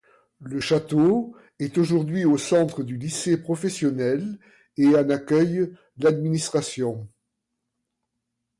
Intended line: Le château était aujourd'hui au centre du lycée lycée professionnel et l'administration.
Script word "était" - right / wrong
wrong